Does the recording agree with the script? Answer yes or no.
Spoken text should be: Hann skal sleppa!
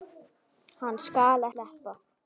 yes